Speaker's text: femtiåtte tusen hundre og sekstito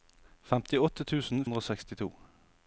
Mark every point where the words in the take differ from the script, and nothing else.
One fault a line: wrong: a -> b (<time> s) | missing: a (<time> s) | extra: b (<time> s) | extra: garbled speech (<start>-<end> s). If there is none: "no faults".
no faults